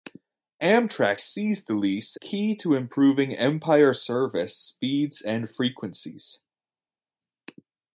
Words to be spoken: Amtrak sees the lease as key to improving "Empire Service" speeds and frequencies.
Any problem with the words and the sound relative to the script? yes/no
yes